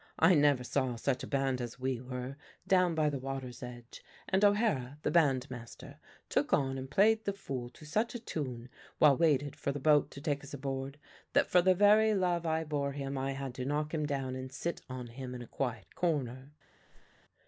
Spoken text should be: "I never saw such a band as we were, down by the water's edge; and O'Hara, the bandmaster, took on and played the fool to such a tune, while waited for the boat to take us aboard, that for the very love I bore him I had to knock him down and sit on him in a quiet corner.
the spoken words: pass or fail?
pass